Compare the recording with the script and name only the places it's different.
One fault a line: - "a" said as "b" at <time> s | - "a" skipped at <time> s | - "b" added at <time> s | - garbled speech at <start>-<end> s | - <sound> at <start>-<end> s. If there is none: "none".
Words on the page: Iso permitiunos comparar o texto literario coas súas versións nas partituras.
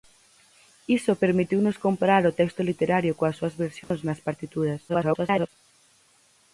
- dropout at 3.8-3.9 s
- garbled speech at 4.9-5.5 s